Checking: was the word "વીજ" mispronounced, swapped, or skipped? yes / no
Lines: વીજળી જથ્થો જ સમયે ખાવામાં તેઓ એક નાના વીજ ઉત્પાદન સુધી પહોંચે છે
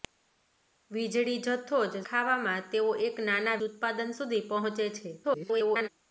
yes